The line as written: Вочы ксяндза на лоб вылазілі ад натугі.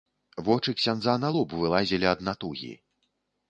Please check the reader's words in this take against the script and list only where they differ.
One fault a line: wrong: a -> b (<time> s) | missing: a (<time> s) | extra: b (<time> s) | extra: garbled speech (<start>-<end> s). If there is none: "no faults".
no faults